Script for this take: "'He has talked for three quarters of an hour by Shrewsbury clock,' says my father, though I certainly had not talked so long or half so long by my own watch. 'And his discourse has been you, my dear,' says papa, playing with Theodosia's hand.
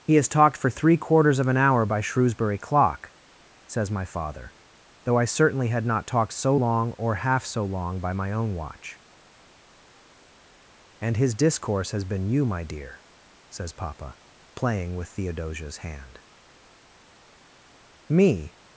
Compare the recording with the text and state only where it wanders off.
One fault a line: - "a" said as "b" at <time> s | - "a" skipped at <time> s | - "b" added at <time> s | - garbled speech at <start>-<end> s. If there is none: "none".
- "Me" added at 18.1 s